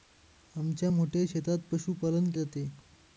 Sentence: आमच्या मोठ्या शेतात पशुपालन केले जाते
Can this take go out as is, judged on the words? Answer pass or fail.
fail